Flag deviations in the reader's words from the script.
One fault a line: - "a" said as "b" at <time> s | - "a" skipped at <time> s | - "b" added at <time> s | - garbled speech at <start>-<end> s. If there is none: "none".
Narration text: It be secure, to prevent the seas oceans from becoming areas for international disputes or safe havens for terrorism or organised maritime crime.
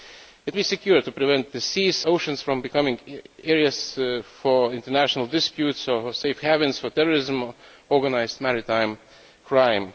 none